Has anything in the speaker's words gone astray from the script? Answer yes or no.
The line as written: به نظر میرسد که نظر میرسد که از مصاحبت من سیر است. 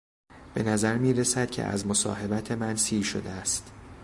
yes